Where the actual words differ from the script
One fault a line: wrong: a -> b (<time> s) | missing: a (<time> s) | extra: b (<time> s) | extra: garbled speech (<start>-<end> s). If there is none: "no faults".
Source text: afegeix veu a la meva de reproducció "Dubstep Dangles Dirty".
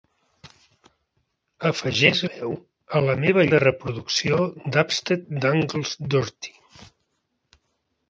no faults